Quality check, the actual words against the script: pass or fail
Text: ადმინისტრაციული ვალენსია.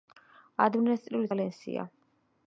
pass